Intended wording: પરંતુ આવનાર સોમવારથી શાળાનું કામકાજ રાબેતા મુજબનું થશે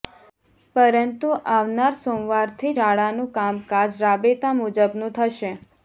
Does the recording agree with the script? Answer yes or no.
yes